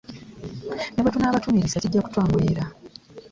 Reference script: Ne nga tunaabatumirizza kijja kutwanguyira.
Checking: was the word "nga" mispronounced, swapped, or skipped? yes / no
yes